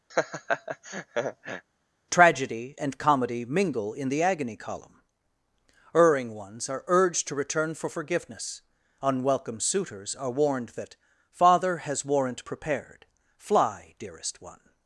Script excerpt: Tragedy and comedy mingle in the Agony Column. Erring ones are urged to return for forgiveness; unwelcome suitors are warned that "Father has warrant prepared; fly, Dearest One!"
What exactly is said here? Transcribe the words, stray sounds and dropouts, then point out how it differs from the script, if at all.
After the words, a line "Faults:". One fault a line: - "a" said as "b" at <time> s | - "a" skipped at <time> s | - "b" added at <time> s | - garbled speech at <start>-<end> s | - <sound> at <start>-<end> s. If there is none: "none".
Tragedy and comedy mingle in the Agony Column. Erring ones are urged to return for forgiveness; unwelcome suitors are warned that "Father has warrant prepared; fly, Dearest One!"
Faults:
- laugh at 0.1-1.6 s